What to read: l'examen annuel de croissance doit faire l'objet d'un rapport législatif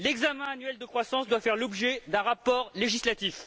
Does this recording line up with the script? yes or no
yes